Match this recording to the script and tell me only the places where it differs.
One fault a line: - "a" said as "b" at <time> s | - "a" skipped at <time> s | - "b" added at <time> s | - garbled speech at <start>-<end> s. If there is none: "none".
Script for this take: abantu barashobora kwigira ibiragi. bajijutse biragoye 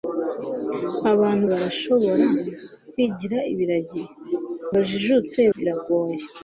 none